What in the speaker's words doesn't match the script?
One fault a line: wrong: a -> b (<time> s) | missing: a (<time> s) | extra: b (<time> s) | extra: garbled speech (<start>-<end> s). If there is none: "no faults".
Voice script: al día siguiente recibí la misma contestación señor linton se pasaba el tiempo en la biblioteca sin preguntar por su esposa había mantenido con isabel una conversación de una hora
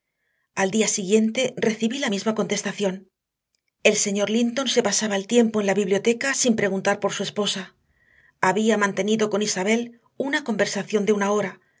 extra: el (3.8 s)